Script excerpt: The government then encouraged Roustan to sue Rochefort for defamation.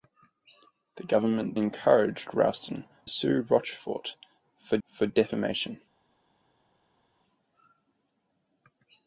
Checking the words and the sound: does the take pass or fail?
fail